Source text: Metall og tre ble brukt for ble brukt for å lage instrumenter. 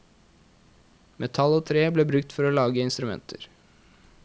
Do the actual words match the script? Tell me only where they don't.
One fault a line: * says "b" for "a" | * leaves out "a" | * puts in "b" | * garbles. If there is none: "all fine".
* leaves out "ble brukt for"